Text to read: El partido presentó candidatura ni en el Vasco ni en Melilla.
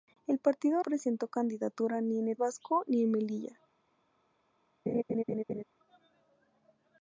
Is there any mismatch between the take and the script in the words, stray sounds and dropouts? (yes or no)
yes